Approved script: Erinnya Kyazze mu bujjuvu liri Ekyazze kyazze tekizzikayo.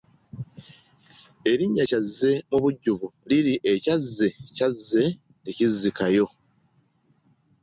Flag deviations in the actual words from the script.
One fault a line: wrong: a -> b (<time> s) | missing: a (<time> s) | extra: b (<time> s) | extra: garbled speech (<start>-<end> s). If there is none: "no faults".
no faults